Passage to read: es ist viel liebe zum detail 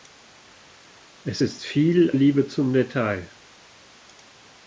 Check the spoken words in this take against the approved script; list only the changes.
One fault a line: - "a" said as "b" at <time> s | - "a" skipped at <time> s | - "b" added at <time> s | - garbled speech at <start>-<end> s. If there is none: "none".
none